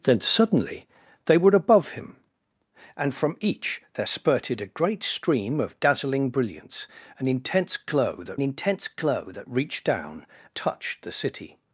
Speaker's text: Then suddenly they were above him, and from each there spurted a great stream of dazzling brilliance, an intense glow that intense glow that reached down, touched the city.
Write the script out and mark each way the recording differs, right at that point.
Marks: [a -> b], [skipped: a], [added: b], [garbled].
Then suddenly they were above him, and from each there spurted a great stream of dazzling brilliance, an intense glow that intense glow that reached down, touched the city.